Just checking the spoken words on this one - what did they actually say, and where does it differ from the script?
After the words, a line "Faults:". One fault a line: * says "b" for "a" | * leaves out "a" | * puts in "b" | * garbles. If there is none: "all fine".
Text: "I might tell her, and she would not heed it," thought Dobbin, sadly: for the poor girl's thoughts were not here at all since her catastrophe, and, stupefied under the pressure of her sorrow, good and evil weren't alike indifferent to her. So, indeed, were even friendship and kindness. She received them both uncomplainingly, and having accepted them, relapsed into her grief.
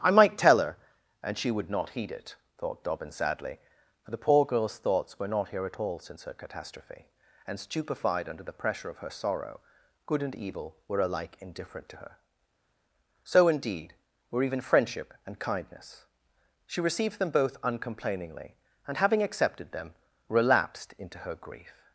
"I might tell her, and she would not heed it," thought Dobbin, sadly: for the poor girl's thoughts were not here at all since her catastrophe, and, stupefied under the pressure of her sorrow, good and evil were alike indifferent to her. So, indeed, were even friendship and kindness. She received them both uncomplainingly, and having accepted them, relapsed into her grief.
Faults:
* says "were" for "weren't"